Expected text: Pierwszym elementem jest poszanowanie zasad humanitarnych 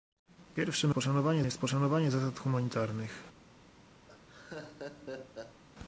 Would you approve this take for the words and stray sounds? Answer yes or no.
no